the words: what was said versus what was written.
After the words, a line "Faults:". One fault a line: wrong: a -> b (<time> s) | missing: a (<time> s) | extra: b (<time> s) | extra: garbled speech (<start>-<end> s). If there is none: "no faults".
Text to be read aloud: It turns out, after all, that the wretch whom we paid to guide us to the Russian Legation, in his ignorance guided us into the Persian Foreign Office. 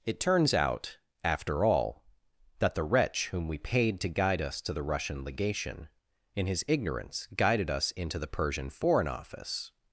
It turns out, after all, that the wretch whom we paid to guide us to the Russian Legation, in his ignorance guided us into the Persian Foreign Office.
Faults:
no faults